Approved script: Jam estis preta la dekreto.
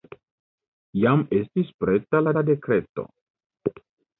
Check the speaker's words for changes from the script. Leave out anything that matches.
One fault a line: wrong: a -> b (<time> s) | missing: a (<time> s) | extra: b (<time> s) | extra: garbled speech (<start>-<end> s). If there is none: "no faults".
extra: la (2.3 s)